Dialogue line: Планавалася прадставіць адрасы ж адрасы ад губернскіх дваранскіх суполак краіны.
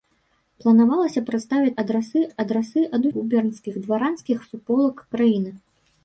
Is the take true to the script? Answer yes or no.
yes